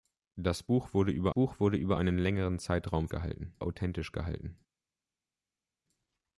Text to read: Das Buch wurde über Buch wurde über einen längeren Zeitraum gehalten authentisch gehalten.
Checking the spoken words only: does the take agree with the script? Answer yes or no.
yes